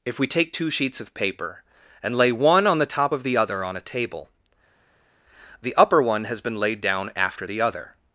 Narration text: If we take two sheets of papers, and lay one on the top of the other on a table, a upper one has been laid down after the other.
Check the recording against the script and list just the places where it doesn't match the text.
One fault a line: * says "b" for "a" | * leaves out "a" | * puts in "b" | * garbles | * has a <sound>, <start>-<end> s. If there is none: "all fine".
* says "paper" for "papers"
* says "the" for "a"